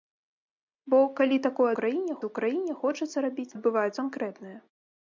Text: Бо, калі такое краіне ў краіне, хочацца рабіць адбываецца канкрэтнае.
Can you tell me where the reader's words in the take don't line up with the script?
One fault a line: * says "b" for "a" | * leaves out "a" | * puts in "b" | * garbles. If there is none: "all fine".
all fine